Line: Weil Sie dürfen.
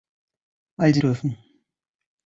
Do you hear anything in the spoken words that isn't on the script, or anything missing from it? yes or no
no